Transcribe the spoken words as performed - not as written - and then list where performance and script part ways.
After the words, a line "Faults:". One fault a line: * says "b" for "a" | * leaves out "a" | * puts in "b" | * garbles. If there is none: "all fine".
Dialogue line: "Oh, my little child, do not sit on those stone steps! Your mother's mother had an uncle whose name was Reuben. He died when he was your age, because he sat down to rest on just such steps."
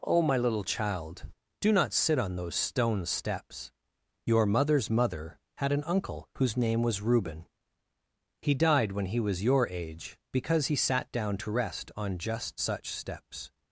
"Oh, my little child, do not sit on those stone steps! Your mother's mother had an uncle whose name was Reuben. He died when he was your age, because he sat down to rest on just such steps."
Faults:
all fine